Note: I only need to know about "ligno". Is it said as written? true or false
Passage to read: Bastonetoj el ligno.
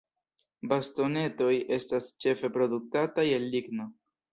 true